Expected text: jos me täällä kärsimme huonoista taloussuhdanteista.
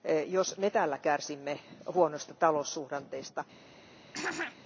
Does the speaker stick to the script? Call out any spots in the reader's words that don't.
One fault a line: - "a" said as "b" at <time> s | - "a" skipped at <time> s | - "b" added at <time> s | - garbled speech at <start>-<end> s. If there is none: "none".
none